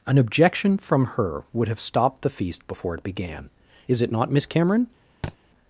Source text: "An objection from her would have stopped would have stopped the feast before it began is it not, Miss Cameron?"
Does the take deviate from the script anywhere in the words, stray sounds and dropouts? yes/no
yes